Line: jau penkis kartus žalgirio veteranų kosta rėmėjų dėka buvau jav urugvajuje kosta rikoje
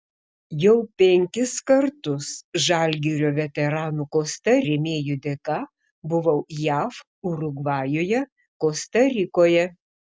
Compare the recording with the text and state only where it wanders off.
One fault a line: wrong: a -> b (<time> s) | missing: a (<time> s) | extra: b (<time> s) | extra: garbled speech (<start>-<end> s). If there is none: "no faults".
no faults